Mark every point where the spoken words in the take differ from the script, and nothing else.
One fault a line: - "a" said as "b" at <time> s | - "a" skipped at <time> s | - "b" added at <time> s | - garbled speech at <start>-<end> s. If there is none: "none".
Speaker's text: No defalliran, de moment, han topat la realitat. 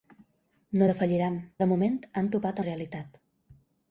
none